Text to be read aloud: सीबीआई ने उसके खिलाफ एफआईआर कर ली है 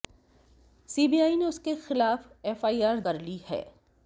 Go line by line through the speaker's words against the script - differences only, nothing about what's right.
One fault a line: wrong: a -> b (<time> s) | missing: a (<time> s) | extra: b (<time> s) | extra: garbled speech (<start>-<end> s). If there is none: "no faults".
no faults